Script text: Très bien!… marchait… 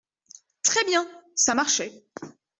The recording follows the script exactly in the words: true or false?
false